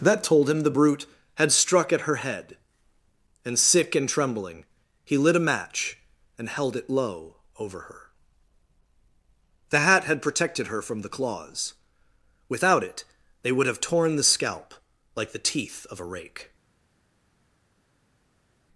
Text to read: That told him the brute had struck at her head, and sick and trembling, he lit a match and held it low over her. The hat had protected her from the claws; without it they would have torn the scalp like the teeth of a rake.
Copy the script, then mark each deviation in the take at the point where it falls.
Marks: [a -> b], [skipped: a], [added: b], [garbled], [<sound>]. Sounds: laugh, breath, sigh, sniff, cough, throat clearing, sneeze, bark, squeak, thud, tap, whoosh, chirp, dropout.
That told him the brute had struck at her head, and sick and trembling, he lit a match and held it low over her. The hat had protected her from the claws; without it they would have torn the scalp like the teeth of a rake.